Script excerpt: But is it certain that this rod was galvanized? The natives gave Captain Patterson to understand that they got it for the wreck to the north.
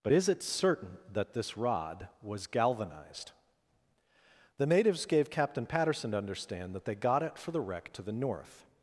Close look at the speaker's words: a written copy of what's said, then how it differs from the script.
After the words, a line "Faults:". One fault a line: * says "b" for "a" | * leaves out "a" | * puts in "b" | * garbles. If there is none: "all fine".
But is it certain that this rod was galvanized? The natives gave Captain Patterson to understand that they got it for the wreck to the north.
Faults:
all fine